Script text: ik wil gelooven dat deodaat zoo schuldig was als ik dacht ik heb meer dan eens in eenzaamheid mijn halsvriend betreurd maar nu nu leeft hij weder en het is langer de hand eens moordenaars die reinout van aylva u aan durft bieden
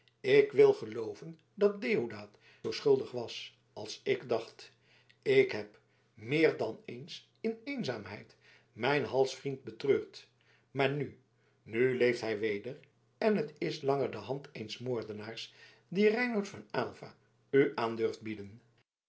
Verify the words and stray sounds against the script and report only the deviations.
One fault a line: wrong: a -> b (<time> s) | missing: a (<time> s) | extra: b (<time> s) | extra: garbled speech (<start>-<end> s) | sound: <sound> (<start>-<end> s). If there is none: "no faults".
no faults